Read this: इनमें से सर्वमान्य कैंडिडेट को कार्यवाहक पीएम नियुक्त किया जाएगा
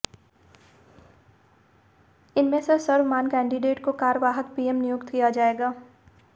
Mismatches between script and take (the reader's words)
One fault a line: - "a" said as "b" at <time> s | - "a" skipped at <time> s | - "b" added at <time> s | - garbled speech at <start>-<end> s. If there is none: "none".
none